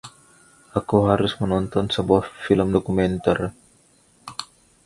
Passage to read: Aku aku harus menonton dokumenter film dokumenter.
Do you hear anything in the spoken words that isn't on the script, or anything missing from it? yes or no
yes